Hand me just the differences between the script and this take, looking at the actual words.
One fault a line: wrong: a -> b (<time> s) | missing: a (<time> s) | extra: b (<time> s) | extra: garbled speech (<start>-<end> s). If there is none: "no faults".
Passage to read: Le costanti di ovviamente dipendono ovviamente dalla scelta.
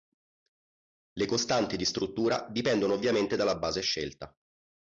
wrong: ovviamente -> struttura (1.9 s)
extra: base (3.6 s)